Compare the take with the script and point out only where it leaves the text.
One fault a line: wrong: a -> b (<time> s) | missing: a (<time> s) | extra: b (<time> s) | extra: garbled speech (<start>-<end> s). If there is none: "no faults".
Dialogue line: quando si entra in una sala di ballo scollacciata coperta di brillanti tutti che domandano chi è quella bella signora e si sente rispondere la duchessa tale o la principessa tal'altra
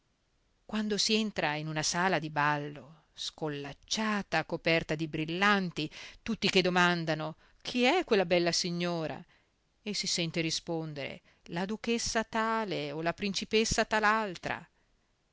no faults